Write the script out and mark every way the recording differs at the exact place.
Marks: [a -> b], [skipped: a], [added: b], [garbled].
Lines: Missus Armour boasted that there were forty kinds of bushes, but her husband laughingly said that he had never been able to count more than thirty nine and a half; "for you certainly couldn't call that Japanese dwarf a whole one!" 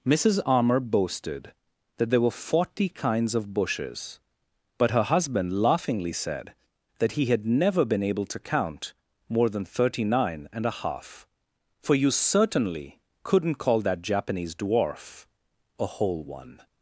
Missus Armour boasted that there were forty kinds of bushes, but her husband laughingly said that he had never been able to count more than thirty nine and a half; "for you certainly couldn't call that Japanese dwarf a whole one!"